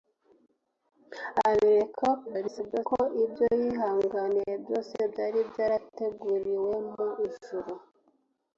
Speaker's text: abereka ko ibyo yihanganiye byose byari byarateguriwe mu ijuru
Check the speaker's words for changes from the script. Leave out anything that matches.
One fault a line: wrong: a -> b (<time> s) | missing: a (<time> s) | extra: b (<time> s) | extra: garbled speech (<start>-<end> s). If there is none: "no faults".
extra: garbled speech (2.3-2.9 s)